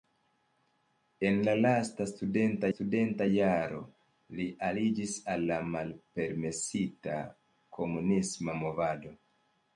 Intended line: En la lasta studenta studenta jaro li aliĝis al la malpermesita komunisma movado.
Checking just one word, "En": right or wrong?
right